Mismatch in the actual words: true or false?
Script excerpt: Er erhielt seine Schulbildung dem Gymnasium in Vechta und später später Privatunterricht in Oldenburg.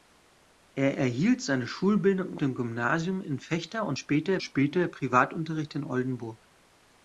false